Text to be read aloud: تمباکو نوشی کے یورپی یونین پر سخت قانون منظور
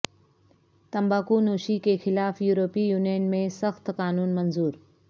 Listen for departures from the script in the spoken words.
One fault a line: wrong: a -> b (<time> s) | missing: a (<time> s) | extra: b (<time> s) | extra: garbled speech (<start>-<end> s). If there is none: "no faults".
extra: خلاف (2.0 s)
wrong: پر -> میں (3.3 s)